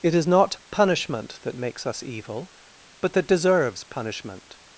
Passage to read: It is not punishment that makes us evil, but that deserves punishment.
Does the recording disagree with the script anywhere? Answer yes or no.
no